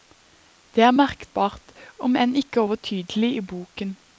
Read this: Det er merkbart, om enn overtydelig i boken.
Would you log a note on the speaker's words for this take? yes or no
yes